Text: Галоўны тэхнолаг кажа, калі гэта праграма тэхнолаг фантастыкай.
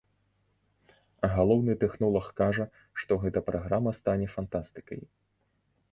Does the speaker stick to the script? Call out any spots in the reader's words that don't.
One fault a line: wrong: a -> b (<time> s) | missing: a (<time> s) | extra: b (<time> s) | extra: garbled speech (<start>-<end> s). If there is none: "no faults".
wrong: калі -> што (3.0 s)
wrong: тэхнолаг -> стане (4.0 s)